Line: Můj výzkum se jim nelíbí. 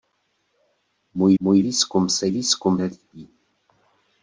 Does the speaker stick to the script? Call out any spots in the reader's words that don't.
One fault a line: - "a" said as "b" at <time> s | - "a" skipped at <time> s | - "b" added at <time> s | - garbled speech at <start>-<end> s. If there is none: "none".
- "můj" added at 1.4 s
- "jim" said as "výzkum" at 2.3 s